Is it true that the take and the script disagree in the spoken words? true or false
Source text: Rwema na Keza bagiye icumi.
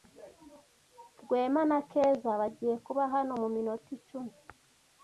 true